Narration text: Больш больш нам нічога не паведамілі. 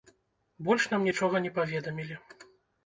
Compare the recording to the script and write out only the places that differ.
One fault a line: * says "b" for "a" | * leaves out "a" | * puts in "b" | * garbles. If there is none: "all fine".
* leaves out "больш"